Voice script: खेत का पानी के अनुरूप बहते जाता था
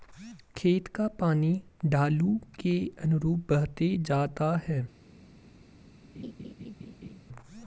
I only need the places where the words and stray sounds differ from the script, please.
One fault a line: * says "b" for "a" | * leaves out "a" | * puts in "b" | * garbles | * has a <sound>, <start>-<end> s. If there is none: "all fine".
* puts in "ढालू"
* says "है" for "था"
* has a laugh, 6.1-7.2 s